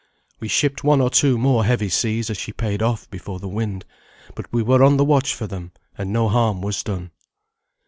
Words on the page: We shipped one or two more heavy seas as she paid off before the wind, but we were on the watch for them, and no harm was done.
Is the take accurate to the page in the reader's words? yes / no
yes